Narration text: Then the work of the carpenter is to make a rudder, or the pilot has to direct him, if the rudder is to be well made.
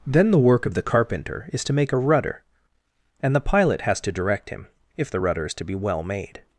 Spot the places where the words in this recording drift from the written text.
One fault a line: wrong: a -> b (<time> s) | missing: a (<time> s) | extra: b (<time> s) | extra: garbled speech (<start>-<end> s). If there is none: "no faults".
wrong: or -> and (3.2 s)